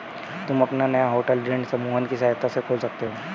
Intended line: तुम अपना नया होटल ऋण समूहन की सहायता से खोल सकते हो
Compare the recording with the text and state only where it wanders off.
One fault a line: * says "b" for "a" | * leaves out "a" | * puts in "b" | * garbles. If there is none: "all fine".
all fine